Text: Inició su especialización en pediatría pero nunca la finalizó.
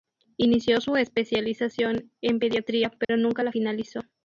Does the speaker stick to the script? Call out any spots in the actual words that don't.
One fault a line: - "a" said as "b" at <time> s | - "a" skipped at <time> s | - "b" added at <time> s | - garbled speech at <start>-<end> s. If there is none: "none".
none